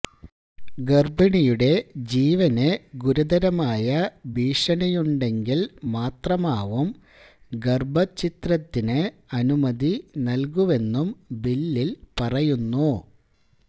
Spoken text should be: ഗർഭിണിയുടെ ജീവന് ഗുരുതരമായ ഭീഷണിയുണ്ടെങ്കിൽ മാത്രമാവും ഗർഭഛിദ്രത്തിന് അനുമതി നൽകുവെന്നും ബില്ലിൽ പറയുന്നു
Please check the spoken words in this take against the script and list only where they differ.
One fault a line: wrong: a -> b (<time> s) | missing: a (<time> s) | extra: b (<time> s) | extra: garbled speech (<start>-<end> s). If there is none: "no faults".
no faults